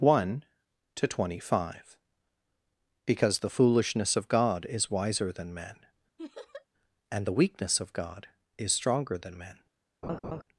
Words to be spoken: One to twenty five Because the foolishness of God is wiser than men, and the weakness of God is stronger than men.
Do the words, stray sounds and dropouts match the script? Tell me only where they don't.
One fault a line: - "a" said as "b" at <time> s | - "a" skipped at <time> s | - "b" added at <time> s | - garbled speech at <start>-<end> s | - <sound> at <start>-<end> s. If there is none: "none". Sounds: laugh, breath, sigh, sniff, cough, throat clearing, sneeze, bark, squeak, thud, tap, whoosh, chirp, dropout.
- laugh at 6.2-6.7 s
- laugh at 10.0-10.4 s